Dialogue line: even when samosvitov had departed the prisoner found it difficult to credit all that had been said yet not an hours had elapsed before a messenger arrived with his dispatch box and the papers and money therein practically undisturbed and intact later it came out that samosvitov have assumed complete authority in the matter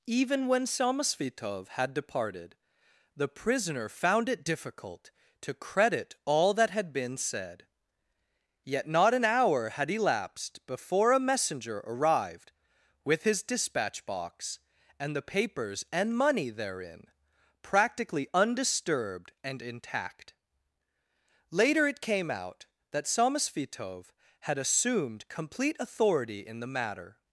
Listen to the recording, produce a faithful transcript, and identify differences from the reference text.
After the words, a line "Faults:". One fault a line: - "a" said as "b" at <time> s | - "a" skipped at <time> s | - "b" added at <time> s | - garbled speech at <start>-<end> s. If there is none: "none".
even when samosvitov had departed the prisoner found it difficult to credit all that had been said yet not an hour had elapsed before a messenger arrived with his dispatch box and the papers and money therein practically undisturbed and intact later it came out that samosvitov had assumed complete authority in the matter
Faults:
- "hours" said as "hour" at 9.2 s
- "have" said as "had" at 24.4 s